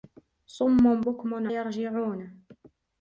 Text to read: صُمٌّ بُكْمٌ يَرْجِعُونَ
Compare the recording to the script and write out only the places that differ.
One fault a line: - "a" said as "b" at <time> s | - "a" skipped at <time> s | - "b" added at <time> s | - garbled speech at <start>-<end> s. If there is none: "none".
none